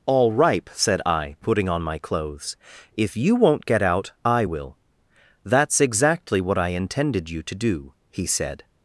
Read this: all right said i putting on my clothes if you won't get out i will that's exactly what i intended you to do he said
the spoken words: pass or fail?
fail